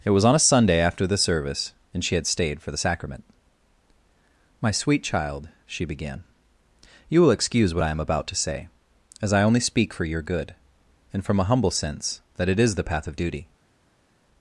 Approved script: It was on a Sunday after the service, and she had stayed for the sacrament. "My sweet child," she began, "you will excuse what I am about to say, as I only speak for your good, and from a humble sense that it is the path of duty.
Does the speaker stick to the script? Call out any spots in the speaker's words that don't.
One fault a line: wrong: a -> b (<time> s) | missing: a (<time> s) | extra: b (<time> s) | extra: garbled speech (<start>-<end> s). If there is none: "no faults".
no faults